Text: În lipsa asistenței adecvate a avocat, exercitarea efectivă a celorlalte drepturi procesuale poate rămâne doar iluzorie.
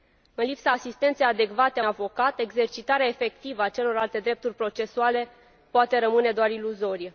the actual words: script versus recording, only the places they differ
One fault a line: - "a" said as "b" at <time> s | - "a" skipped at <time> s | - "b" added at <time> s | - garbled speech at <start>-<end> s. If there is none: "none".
none